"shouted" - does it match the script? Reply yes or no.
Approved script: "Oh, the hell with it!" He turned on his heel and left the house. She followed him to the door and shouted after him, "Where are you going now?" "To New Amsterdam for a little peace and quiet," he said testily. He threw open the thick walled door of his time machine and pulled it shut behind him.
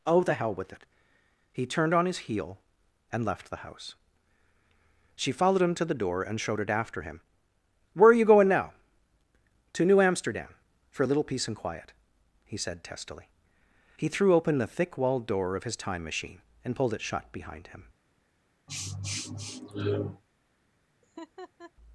no